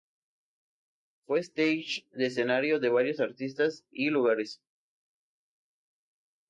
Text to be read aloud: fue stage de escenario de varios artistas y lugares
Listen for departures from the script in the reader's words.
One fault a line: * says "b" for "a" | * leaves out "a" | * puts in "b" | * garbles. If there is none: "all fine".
all fine